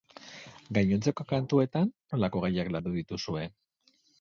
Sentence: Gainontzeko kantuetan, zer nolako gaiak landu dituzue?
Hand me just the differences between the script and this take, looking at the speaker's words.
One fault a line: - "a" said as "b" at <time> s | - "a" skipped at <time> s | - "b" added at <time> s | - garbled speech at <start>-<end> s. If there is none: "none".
- "zer" skipped at 1.9 s